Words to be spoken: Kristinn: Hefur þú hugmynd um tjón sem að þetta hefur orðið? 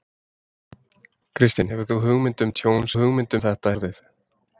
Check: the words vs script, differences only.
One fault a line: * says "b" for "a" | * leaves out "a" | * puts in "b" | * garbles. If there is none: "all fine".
* says "hugmynd" for "sem"
* leaves out "hefur"